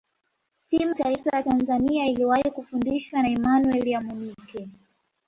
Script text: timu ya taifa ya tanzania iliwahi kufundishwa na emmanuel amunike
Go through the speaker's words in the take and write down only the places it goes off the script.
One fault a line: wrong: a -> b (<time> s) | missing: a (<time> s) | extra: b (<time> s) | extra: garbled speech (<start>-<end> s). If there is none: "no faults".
missing: ya (0.9 s)